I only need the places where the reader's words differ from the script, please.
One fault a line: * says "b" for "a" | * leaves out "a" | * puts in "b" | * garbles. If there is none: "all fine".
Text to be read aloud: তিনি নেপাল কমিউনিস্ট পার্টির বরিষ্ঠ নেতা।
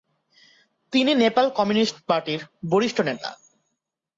all fine